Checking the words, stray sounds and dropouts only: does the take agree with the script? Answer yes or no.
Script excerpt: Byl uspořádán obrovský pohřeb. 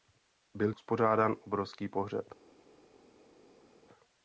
yes